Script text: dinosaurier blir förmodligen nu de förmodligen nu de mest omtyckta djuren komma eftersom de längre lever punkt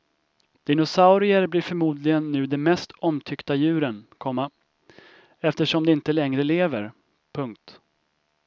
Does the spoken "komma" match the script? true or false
true